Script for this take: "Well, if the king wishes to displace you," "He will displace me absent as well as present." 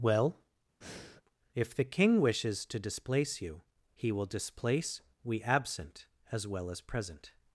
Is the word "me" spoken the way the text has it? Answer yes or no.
no